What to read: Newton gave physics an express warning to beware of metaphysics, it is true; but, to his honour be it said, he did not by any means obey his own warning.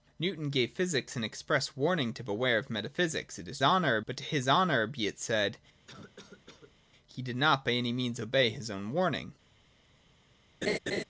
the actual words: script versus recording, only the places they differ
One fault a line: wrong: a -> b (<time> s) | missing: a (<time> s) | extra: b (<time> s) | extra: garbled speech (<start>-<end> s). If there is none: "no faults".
wrong: true -> honour (3.6 s)